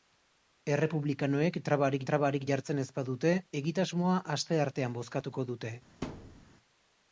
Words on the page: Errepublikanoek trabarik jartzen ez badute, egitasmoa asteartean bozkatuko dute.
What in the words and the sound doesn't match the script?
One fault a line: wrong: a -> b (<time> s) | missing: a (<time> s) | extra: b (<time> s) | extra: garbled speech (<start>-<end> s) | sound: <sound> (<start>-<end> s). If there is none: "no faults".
extra: trabarik (2.1 s)
sound: thud (6.0-6.5 s)